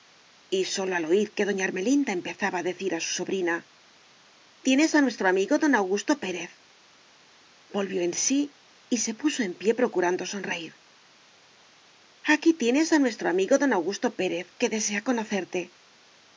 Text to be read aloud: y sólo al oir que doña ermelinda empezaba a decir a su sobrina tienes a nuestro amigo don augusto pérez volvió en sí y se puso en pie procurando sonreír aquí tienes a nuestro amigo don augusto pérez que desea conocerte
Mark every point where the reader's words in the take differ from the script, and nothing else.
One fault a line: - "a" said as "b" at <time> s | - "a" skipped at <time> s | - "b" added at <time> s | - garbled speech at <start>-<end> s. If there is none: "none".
none